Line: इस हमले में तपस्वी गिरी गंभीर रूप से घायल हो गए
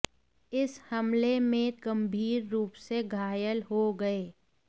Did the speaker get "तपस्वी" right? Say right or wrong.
wrong